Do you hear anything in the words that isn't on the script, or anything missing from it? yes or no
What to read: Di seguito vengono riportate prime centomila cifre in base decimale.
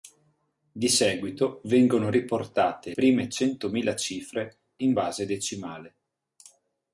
no